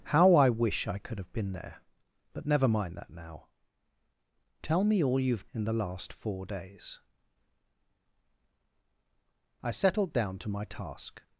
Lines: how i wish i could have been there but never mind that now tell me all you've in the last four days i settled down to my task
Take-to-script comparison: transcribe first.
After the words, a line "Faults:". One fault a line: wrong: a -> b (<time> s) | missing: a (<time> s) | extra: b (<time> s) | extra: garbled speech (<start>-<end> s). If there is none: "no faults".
how i wish i could have been there but never mind that now tell me all you've in the last four days i settled down to my task
Faults:
no faults